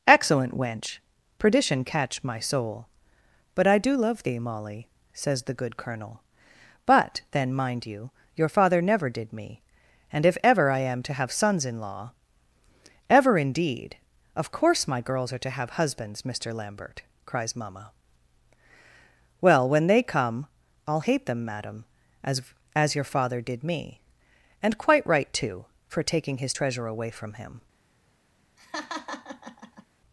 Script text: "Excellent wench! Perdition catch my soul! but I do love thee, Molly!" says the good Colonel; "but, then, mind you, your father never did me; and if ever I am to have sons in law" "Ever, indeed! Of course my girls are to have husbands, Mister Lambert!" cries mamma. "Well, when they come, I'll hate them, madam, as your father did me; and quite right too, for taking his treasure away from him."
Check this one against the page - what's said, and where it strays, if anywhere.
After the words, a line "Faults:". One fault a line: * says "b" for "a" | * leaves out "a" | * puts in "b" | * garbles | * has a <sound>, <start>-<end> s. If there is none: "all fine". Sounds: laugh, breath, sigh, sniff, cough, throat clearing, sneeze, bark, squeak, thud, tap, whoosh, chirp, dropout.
"Excellent wench! Perdition catch my soul! but I do love thee, Molly!" says the good Colonel; "but, then, mind you, your father never did me; and if ever I am to have sons in law" "Ever, indeed! Of course my girls are to have husbands, Mister Lambert!" cries mamma. "Well, when they come, I'll hate them, madam, as as your father did me; and quite right too, for taking his treasure away from him."
Faults:
* puts in "as"
* has a laugh, 28.6-29.9 s